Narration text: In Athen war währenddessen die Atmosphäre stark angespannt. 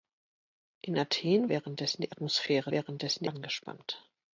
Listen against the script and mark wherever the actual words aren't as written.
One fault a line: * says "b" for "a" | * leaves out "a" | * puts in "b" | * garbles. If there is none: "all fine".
* leaves out "war"
* says "währenddessen" for "stark"